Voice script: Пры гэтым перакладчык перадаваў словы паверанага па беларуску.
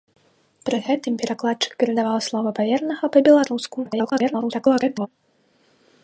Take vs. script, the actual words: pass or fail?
fail